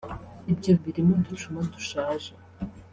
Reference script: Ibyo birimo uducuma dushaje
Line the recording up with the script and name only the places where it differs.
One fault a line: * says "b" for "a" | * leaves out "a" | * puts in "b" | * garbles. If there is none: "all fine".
all fine